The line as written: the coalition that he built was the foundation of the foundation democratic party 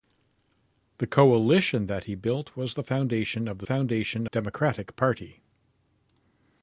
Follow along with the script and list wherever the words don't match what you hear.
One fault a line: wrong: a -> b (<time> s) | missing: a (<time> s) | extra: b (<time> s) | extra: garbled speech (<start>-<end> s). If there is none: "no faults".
no faults